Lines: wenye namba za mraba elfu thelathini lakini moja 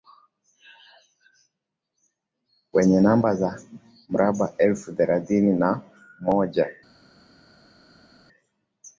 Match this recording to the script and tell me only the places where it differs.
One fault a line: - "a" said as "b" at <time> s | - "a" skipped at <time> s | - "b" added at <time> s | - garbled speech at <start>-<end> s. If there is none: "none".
- "lakini" said as "na" at 5.6 s